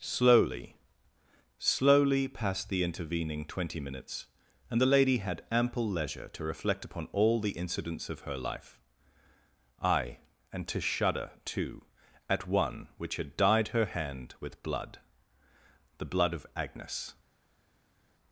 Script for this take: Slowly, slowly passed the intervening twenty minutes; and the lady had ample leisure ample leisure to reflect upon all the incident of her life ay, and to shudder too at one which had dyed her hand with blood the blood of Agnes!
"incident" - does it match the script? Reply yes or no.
no